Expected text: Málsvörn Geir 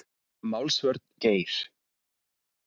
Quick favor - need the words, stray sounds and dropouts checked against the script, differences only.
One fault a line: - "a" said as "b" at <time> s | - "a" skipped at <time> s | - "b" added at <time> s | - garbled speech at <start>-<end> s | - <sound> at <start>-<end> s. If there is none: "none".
none